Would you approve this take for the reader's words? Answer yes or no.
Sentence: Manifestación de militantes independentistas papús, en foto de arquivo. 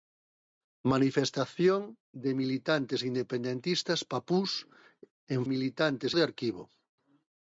no